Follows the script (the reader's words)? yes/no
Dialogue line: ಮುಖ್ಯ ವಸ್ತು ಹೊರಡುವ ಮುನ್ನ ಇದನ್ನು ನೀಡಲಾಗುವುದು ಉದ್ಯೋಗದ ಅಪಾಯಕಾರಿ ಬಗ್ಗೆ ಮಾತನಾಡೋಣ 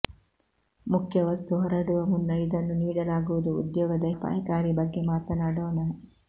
yes